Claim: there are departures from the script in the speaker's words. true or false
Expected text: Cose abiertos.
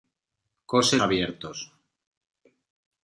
false